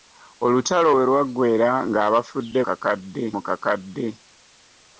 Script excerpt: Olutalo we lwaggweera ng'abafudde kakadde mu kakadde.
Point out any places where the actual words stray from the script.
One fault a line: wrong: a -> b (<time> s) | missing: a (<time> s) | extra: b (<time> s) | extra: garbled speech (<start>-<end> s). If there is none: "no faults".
no faults